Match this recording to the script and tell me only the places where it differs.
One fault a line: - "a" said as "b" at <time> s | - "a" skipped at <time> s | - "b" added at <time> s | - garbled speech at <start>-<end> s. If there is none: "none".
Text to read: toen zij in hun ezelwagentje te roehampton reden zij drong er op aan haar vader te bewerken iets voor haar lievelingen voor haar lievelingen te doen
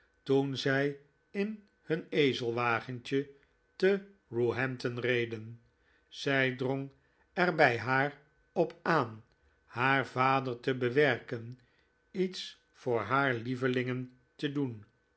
- "bij haar" added at 7.6 s
- "voor haar lievelingen" skipped at 14.2 s